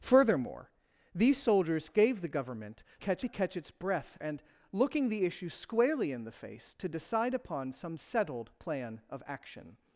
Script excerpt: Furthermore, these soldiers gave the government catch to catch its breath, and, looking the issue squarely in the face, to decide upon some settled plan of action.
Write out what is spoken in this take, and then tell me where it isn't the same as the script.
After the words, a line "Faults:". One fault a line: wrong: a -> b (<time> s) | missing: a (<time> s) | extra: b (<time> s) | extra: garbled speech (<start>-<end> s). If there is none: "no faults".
Furthermore, these soldiers gave the government catch to catch its breath, and, looking the issue squarely in the face, to decide upon some settled plan of action.
Faults:
no faults